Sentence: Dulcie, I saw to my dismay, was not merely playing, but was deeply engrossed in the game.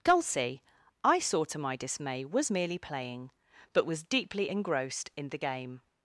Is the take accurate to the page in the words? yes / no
no